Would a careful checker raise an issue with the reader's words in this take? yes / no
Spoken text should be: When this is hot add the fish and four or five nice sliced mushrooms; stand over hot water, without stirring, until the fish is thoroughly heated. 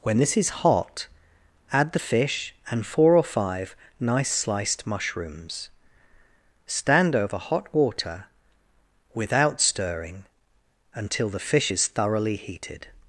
no